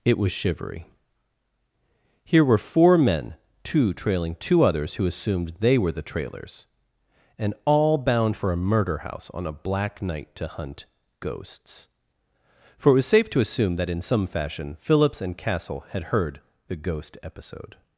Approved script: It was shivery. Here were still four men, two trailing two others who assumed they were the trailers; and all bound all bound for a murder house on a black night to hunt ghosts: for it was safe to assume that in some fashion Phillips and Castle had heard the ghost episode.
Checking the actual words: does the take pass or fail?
fail